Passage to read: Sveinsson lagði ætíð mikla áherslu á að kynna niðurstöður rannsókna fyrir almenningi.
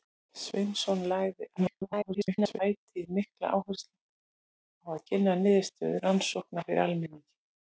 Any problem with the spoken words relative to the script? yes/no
yes